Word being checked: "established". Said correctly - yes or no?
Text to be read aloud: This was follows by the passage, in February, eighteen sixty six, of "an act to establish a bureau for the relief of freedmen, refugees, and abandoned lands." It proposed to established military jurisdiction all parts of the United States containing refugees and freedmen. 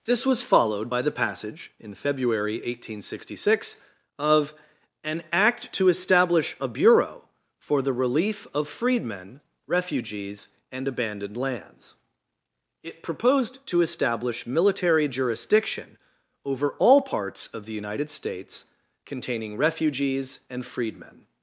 no